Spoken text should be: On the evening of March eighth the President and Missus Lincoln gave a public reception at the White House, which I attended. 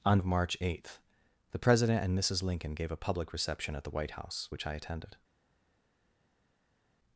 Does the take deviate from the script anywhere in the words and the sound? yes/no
yes